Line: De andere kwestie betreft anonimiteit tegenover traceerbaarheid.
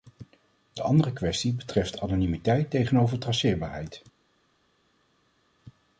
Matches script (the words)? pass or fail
pass